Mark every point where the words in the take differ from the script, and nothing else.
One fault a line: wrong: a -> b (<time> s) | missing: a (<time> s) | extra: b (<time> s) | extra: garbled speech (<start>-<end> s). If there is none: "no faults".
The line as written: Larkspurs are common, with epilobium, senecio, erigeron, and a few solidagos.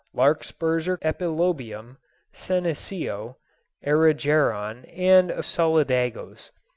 missing: common with (1.0 s)
missing: few (5.4 s)